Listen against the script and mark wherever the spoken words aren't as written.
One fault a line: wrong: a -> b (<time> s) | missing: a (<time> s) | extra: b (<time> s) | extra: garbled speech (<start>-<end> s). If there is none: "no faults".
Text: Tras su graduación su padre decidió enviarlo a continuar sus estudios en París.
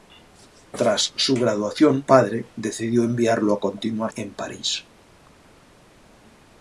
missing: su (2.0 s)
missing: sus estudios (4.1 s)